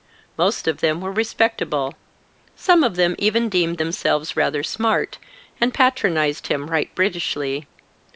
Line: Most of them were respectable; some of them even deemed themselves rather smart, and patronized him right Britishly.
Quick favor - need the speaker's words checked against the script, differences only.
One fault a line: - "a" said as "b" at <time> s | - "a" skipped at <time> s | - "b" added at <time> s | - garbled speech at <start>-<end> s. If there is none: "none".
none